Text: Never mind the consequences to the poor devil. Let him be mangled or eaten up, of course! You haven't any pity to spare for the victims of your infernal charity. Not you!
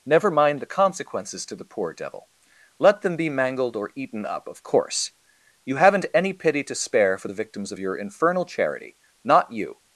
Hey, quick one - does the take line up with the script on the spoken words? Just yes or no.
no